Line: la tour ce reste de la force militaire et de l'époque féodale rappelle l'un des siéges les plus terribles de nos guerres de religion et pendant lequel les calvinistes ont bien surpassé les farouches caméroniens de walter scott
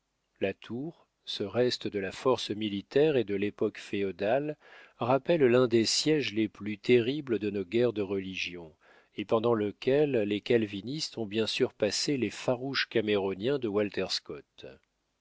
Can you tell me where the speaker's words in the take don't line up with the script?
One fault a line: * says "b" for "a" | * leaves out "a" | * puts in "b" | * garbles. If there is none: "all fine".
all fine